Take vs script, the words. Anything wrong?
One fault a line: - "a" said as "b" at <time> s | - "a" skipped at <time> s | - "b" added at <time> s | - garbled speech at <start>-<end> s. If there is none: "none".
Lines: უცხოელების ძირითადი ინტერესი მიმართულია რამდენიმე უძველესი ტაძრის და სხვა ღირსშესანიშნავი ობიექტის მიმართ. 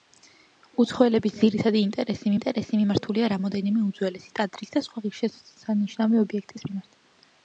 - "ინტერესი" added at 2.4 s